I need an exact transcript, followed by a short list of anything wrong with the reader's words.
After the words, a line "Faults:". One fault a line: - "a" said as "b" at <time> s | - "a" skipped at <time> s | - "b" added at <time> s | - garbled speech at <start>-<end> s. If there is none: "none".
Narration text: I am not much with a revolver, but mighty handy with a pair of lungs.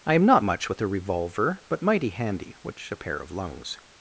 I am not much with a revolver, but mighty handy which a pair of lungs.
Faults:
- "with" said as "which" at 2.6 s